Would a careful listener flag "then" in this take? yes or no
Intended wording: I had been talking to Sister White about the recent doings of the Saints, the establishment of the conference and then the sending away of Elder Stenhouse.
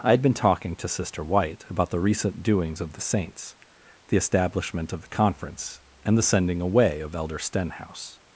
yes